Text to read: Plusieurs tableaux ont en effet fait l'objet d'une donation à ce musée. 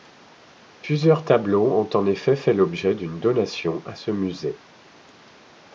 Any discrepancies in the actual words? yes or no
no